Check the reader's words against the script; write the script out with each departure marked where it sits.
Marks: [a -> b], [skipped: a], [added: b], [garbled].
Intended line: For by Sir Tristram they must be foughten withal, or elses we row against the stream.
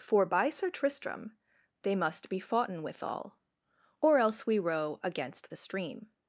For by Sir Tristram they must be foughten withal, or [elses -> else] we row against the stream.